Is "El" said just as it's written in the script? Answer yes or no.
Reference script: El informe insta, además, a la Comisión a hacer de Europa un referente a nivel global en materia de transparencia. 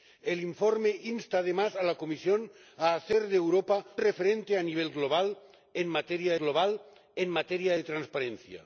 yes